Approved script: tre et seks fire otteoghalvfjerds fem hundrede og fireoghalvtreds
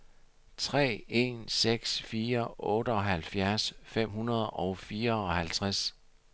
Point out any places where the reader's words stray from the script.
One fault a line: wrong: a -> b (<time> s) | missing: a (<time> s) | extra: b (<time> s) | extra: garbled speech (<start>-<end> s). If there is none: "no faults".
wrong: et -> en (1.1 s)